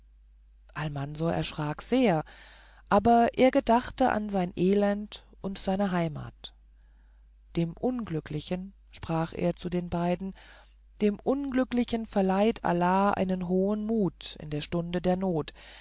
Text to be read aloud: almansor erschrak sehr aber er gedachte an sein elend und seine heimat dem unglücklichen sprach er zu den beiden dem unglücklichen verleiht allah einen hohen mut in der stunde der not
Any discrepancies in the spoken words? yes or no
no